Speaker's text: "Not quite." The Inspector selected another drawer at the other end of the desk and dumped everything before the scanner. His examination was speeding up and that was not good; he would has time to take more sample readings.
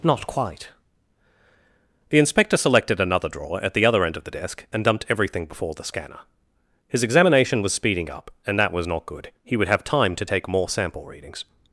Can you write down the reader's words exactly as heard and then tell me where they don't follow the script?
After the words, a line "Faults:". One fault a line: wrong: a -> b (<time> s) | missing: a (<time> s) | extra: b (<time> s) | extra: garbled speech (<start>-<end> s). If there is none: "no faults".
"Not quite." The Inspector selected another drawer at the other end of the desk and dumped everything before the scanner. His examination was speeding up and that was not good; he would have time to take more sample readings.
Faults:
wrong: has -> have (9.7 s)